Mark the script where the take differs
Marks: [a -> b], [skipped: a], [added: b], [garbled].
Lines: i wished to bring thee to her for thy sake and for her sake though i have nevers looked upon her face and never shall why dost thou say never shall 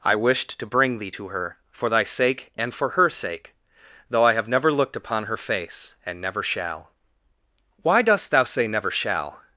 i wished to bring thee to her for thy sake and for her sake though i have [nevers -> never] looked upon her face and never shall why dost thou say never shall